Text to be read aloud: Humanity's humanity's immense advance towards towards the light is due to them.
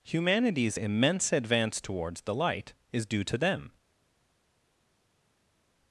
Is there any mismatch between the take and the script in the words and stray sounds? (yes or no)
yes